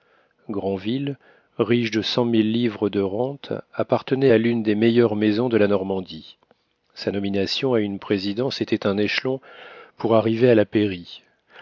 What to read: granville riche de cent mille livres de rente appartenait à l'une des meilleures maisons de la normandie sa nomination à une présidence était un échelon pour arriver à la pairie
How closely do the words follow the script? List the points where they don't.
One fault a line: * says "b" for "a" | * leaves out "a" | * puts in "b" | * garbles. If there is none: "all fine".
all fine